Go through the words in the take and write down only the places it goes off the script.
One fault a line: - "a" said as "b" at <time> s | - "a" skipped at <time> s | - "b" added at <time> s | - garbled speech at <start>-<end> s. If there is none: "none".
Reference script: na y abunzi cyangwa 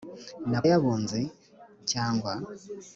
none